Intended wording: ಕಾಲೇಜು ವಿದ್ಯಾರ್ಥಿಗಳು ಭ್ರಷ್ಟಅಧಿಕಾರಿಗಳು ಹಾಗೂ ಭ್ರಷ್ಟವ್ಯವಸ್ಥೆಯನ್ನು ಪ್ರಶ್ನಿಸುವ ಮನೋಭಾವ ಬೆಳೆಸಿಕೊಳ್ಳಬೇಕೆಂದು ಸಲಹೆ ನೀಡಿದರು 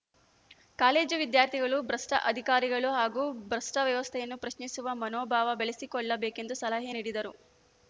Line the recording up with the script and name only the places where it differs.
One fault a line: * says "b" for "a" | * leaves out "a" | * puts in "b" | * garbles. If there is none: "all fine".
all fine